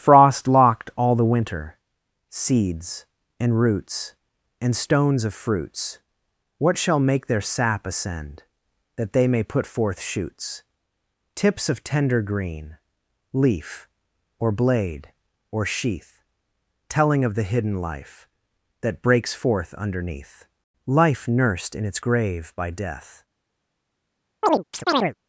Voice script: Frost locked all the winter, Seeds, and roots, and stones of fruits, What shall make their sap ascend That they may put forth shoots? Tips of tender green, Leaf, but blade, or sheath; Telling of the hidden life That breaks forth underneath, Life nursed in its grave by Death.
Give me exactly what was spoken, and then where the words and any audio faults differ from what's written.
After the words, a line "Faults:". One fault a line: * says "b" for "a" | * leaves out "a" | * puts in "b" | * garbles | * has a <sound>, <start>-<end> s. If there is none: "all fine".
Frost locked all the winter, Seeds, and roots, and stones of fruits, What shall make their sap ascend That they may put forth shoots? Tips of tender green, Leaf, or blade, or sheath; Telling of the hidden life That breaks forth underneath, Life nursed in its grave by Death.
Faults:
* says "or" for "but"
* has a chirp, 24.4-25.1 s